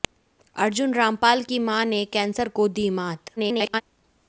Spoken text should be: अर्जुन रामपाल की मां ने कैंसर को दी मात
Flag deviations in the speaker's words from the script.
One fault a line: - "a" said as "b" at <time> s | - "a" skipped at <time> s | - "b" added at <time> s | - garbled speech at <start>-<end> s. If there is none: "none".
- garbled speech at 3.4-3.8 s